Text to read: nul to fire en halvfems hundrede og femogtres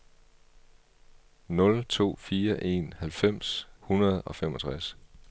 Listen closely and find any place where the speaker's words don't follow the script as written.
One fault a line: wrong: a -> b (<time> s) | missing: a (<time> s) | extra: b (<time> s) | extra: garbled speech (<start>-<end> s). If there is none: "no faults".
no faults